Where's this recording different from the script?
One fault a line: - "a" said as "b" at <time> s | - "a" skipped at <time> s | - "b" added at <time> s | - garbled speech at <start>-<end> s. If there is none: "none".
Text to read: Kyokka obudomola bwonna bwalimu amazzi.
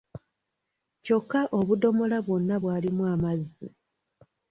none